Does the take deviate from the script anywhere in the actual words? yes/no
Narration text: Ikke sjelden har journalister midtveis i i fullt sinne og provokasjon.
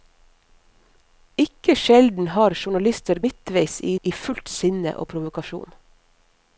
no